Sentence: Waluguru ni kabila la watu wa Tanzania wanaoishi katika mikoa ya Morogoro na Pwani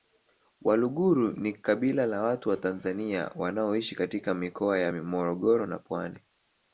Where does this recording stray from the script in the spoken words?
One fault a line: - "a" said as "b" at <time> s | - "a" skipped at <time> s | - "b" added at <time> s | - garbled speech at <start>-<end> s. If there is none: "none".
none